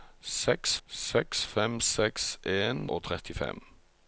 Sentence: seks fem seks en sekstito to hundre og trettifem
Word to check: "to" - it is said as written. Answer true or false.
false